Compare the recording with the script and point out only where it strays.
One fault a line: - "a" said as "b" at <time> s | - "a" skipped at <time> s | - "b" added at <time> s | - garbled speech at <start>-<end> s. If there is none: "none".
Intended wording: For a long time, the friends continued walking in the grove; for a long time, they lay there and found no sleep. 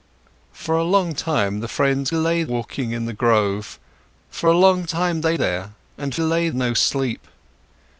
- "continued" said as "lay" at 2.1 s
- "lay" skipped at 5.4 s
- "found" said as "lay" at 6.2 s